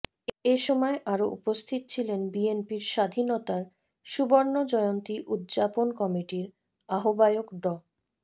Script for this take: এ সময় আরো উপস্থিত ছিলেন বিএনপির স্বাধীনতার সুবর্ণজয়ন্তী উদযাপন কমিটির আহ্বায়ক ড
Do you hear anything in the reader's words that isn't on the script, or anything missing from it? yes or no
no